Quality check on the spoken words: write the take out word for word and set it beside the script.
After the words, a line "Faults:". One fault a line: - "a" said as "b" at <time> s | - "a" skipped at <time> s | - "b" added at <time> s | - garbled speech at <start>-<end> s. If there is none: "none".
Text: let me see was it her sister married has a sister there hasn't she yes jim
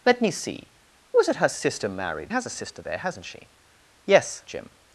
let me see was it her sister married has a sister there hasn't she yes jim
Faults:
none